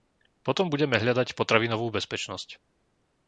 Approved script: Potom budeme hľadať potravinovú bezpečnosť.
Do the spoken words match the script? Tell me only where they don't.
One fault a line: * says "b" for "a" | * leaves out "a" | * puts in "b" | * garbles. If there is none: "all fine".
all fine